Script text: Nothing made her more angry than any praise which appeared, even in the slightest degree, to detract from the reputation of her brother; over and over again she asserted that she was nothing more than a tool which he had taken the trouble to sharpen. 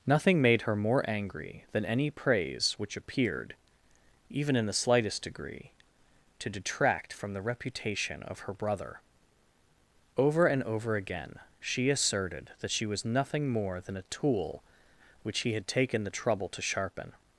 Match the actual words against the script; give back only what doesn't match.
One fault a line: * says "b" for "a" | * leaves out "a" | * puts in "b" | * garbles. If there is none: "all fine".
all fine